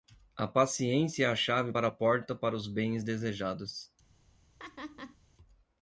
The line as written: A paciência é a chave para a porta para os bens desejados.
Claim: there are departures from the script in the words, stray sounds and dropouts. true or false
true